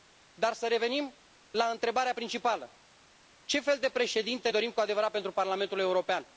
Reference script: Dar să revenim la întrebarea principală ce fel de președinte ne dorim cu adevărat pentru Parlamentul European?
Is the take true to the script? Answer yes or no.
no